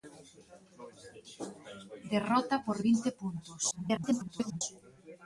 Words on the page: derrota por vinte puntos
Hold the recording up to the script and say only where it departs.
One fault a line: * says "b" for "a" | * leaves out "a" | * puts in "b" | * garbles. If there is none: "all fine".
* garbles